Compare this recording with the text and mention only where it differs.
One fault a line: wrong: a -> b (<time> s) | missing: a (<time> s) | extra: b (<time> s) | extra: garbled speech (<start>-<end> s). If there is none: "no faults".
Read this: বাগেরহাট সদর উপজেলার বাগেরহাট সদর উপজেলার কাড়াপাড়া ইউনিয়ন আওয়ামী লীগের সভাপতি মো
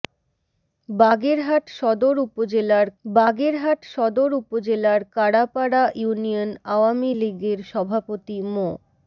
no faults